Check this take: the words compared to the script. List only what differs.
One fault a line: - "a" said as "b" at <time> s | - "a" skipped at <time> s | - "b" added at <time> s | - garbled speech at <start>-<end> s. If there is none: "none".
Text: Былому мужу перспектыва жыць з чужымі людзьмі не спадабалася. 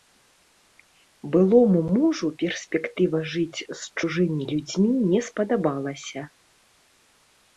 none